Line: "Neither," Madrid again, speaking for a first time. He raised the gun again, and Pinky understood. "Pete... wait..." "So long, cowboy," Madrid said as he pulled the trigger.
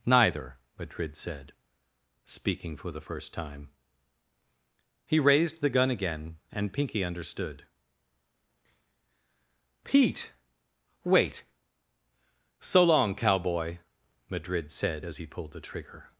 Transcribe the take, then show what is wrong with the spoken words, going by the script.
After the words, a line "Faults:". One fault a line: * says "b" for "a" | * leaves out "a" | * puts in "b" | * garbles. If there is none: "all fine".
"Neither," Madrid said, speaking for the first time. He raised the gun again, and Pinky understood. "Pete... wait..." "So long, cowboy," Madrid said as he pulled the trigger.
Faults:
* says "said" for "again"
* says "the" for "a"